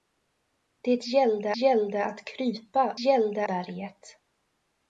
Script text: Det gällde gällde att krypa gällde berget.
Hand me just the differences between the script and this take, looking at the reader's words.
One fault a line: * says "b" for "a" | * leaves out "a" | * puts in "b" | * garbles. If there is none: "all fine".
all fine